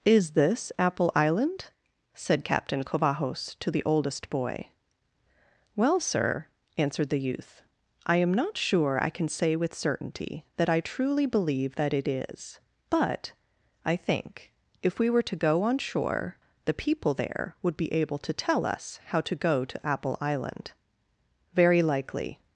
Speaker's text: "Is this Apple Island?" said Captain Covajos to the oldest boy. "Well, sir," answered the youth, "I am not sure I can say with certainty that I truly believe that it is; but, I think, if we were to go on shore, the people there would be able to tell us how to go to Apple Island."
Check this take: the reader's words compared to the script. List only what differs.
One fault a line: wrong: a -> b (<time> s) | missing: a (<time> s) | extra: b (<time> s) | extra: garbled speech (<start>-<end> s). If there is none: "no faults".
extra: Very likely (21.5 s)